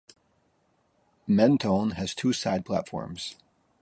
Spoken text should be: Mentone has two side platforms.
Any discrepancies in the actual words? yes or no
no